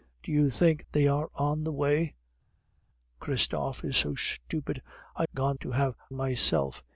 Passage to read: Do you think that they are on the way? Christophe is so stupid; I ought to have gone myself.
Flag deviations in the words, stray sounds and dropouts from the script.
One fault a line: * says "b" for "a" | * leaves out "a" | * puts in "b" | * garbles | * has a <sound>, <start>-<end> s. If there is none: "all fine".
* leaves out "that"
* says "gone" for "ought"
* leaves out "gone"